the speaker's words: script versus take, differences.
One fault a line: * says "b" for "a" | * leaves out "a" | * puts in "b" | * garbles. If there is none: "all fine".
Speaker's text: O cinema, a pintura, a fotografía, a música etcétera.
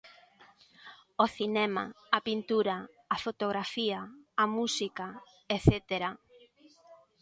all fine